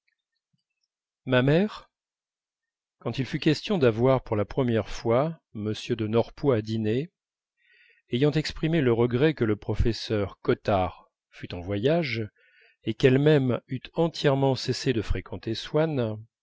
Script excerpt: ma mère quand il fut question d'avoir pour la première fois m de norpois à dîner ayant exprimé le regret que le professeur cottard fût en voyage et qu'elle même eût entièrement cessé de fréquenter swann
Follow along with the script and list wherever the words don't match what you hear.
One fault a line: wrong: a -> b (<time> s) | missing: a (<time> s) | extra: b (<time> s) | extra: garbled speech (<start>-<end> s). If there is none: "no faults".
no faults